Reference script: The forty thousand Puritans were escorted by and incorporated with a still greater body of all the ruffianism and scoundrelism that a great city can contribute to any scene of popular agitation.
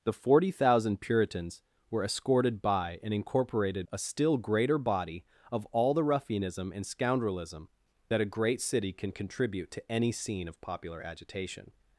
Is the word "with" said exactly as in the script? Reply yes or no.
no